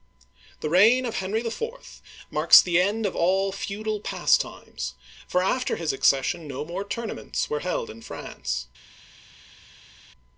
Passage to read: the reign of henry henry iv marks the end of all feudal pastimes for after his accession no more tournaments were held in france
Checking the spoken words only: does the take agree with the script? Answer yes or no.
no